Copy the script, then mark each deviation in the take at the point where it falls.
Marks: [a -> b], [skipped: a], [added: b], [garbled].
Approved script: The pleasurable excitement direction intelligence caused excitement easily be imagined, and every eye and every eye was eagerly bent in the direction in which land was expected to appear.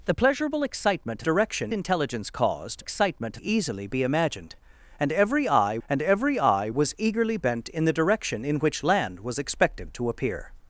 The pleasurable excitement direction intelligence caused excitement easily be imagined, and every eye and every eye was eagerly bent in the direction in which land was expected to appear.